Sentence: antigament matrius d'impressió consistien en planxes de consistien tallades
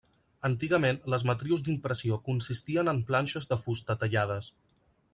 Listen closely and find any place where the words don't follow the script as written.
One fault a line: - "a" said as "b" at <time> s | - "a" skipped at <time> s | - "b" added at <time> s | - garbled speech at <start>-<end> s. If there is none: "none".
- "les" added at 1.1 s
- "consistien" said as "fusta" at 3.7 s